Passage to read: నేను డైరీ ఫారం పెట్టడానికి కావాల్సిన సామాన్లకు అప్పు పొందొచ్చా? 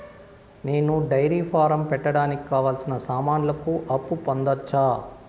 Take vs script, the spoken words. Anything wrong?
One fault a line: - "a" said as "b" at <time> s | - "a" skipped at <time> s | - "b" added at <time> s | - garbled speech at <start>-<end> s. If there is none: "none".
none